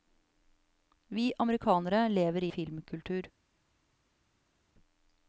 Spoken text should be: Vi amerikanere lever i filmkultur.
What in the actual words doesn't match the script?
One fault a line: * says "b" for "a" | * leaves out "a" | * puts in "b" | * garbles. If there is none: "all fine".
all fine